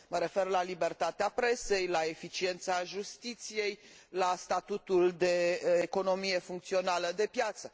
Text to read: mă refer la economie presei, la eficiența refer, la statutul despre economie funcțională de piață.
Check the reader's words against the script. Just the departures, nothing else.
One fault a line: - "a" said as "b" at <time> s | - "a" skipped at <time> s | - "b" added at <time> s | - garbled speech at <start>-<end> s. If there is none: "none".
- "economie" said as "libertatea" at 0.6 s
- "refer" said as "justiției" at 2.8 s
- "despre" said as "de" at 5.1 s